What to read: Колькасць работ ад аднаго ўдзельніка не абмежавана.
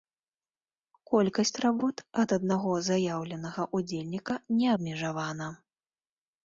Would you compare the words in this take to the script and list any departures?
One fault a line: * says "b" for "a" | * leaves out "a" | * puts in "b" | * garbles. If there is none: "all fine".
* puts in "заяўленага"